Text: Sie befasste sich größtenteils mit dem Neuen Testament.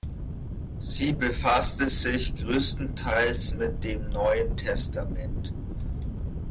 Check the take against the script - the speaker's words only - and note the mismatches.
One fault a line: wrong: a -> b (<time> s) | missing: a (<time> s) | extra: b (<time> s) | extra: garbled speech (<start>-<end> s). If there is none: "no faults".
no faults